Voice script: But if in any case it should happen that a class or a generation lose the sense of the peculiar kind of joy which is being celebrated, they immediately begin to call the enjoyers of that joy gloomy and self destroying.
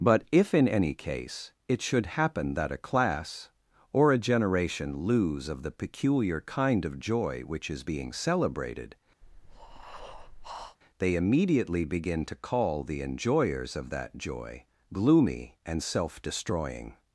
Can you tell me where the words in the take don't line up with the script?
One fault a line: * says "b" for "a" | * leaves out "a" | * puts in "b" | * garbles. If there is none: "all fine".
* leaves out "the sense"